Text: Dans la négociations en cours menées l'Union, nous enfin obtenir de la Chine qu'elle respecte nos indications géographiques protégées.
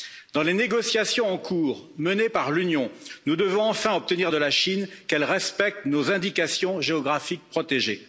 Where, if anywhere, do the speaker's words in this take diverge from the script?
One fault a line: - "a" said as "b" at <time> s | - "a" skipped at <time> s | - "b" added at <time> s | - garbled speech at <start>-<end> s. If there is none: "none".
- "la" said as "les" at 0.4 s
- "par" added at 2.3 s
- "devons" added at 3.4 s